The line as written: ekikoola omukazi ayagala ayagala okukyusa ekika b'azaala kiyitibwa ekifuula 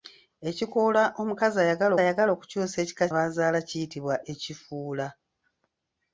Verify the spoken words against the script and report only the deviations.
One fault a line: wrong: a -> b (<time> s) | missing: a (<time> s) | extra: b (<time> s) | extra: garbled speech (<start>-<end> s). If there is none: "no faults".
no faults